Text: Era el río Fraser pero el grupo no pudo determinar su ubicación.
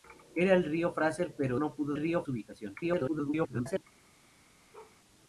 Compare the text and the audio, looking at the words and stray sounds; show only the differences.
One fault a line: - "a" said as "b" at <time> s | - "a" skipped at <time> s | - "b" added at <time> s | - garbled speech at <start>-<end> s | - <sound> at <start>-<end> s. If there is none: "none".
- "el grupo" skipped at 1.6 s
- "determinar" said as "río" at 1.9 s
- garbled speech at 2.8-3.8 s
- bark at 4.7-5.0 s